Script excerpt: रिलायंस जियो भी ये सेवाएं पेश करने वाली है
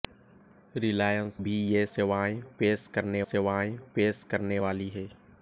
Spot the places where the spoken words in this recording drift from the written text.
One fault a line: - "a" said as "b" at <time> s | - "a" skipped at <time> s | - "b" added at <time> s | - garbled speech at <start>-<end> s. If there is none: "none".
- "जियो" skipped at 1.4 s
- "सेवाएं पेश करने" added at 3.2 s